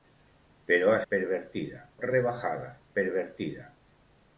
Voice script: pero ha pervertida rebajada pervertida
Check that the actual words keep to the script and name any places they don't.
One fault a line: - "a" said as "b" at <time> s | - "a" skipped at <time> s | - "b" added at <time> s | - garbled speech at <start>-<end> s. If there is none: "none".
none